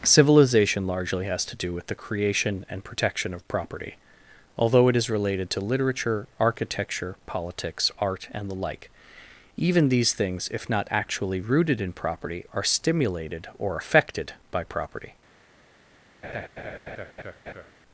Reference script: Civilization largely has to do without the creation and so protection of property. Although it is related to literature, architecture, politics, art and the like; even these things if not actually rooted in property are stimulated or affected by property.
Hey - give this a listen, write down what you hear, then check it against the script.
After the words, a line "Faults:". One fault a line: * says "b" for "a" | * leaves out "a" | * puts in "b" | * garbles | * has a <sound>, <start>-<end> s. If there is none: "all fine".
Civilization largely has to do with the creation and protection of property. Although it is related to literature, architecture, politics, art and the like; even these things if not actually rooted in property are stimulated or affected by property.
Faults:
* says "with" for "without"
* leaves out "so"
* has a laugh, 16.2-17.7 s